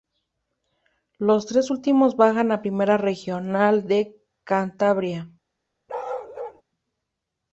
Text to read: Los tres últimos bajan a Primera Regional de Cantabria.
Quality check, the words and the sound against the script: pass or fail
fail